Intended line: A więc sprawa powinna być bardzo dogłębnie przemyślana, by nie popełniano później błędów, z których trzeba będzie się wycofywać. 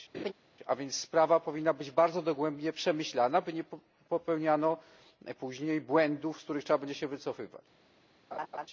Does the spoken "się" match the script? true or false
true